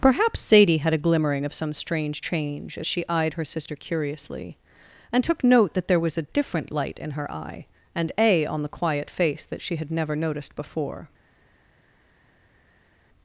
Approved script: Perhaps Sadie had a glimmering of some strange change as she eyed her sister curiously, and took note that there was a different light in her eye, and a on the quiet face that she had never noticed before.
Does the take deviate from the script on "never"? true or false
false